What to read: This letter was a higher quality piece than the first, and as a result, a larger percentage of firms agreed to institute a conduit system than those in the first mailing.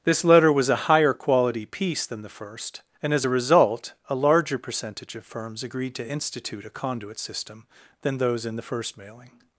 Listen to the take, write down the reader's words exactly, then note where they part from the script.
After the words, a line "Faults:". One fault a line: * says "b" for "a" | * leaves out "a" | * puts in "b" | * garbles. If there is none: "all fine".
This letter was a higher quality piece than the first, and as a result, a larger percentage of firms agreed to institute a conduit system than those in the first mailing.
Faults:
all fine